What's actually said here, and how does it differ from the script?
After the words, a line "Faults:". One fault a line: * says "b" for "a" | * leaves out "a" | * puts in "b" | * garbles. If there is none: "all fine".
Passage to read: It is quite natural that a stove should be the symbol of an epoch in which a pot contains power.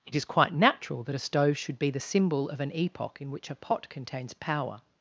It is quite natural that a stove should be the symbol of an epoch in which a pot contains power.
Faults:
all fine